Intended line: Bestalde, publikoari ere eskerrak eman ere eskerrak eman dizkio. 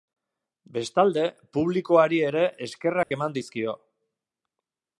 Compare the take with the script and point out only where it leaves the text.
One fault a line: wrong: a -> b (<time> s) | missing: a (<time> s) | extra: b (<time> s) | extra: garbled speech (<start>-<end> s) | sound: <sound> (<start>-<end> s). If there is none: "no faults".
sound: dropout (3.0-3.1 s)
missing: ere eskerrak eman (3.4 s)